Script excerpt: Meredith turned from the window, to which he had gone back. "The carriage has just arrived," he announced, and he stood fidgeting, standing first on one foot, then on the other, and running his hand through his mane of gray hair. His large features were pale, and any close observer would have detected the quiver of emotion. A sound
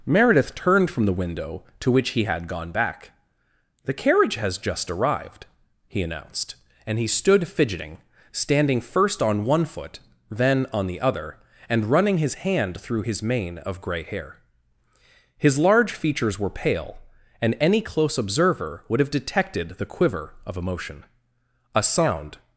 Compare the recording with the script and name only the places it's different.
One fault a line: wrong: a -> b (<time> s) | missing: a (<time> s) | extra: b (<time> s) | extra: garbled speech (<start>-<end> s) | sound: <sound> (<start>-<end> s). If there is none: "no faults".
no faults